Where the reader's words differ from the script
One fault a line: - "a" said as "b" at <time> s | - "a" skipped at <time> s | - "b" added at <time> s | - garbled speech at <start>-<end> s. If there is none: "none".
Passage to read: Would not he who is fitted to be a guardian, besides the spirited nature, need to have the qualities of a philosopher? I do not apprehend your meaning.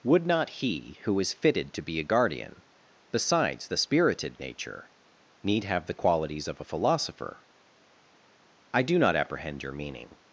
- "to" skipped at 5.6 s